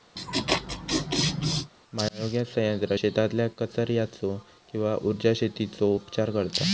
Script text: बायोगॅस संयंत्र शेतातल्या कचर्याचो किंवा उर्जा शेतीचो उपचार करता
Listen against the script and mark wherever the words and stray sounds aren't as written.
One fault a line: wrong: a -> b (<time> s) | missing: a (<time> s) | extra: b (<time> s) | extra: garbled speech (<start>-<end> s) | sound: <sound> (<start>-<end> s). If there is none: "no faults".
sound: laugh (0.2-1.7 s)